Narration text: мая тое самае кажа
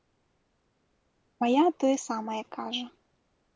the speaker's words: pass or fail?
pass